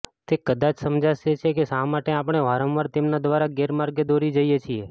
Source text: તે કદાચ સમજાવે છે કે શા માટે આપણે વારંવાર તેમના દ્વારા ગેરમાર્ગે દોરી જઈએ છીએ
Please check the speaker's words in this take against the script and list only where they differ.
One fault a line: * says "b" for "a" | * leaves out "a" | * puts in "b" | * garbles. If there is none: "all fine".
all fine